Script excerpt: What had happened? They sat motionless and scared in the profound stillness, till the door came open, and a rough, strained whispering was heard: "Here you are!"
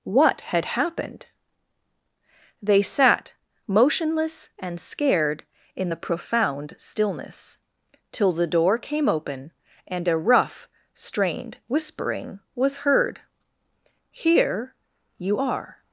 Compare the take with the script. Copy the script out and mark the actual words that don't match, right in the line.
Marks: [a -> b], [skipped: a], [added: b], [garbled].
What had happened? They sat motionless and scared in the profound stillness, till the door came open, and a rough, strained whispering was heard: "Here you are!"